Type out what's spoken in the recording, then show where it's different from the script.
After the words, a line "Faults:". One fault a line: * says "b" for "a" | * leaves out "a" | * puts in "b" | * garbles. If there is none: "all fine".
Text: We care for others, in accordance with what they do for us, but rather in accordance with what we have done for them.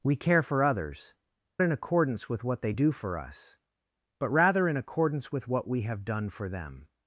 We care for others, in accordance with what they do for us, but rather in accordance with what we have done for them.
Faults:
all fine